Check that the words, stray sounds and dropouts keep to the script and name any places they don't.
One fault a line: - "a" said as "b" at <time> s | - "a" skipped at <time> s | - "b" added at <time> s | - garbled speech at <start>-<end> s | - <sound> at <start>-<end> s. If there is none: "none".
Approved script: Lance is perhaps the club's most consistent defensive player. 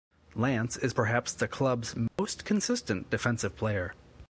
- dropout at 2.1-2.2 s